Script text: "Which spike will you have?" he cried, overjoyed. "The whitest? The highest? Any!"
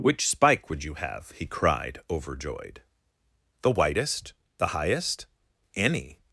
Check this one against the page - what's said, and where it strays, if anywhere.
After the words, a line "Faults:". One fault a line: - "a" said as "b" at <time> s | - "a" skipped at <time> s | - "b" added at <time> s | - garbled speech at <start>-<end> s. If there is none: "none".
"Which spike would you have?" he cried, overjoyed. "The whitest? The highest? Any!"
Faults:
- "will" said as "would" at 0.7 s